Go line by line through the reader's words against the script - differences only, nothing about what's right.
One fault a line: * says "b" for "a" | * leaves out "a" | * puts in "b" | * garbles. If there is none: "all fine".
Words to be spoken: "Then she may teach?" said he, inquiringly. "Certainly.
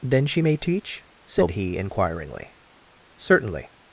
all fine